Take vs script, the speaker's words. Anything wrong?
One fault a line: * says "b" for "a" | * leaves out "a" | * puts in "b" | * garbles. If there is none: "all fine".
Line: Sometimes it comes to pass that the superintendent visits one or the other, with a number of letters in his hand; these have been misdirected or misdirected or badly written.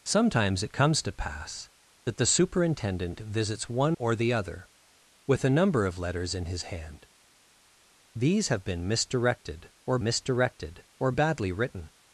all fine